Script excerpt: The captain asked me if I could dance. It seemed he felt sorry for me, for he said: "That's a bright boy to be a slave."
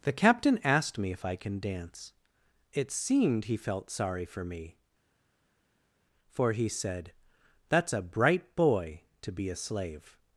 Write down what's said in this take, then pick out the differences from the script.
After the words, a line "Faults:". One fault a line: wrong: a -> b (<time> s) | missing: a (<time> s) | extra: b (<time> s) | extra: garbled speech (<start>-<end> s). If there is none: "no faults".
The captain asked me if I can dance. It seemed he felt sorry for me, for he said: "That's a bright boy to be a slave."
Faults:
wrong: could -> can (1.4 s)